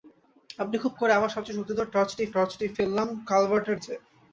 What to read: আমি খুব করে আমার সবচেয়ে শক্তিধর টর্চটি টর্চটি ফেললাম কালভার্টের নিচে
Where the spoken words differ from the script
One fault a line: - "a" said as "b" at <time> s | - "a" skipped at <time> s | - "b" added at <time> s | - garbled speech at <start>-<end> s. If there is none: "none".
none